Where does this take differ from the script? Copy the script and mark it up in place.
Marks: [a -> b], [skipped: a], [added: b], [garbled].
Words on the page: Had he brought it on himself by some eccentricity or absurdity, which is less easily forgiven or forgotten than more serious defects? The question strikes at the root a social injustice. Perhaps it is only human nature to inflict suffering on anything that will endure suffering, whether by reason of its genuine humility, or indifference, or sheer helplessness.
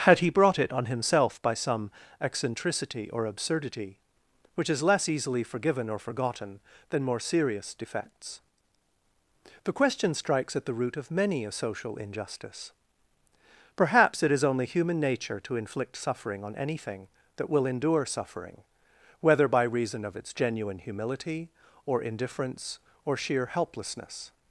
Had he brought it on himself by some eccentricity or absurdity, which is less easily forgiven or forgotten than more serious defects? The question strikes at the root [added: of many] a social injustice. Perhaps it is only human nature to inflict suffering on anything that will endure suffering, whether by reason of its genuine humility, or indifference, or sheer helplessness.